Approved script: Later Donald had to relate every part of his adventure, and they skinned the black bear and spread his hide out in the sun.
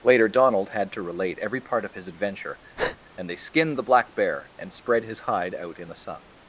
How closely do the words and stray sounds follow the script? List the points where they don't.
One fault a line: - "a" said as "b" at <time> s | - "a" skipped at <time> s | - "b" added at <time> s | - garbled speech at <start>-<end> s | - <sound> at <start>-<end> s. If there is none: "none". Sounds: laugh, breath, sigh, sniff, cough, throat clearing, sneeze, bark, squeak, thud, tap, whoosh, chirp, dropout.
- breath at 2.8-3.0 s